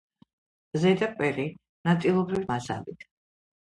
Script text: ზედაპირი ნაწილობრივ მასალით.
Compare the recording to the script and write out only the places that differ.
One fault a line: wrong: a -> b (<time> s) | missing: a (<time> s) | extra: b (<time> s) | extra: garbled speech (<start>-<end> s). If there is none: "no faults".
no faults